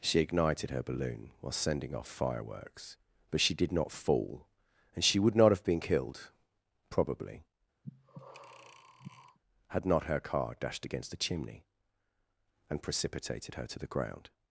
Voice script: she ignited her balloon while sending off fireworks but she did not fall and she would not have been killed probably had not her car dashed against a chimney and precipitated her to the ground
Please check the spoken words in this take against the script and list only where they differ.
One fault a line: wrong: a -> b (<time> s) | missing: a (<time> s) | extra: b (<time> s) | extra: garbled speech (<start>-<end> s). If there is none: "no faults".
no faults